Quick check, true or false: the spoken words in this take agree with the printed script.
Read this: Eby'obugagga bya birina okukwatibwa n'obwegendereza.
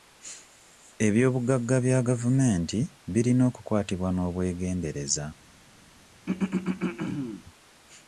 false